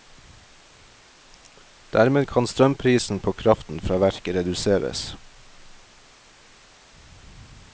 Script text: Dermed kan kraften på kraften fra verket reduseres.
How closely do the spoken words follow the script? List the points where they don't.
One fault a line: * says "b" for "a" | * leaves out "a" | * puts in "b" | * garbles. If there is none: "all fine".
* says "strømprisen" for "kraften"